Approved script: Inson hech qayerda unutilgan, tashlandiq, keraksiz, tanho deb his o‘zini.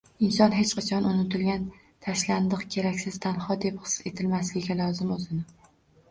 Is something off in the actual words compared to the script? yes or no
yes